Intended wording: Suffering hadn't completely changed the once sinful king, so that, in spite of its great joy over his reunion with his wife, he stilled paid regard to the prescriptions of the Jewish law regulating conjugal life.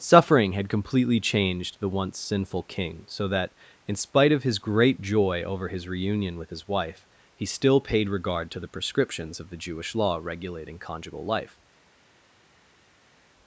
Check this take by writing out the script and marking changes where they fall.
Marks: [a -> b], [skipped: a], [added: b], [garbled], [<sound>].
Suffering [hadn't -> had] completely changed the once sinful king, so that, in spite of [its -> his] great joy over his reunion with his wife, he [stilled -> still] paid regard to the prescriptions of the Jewish law regulating conjugal life.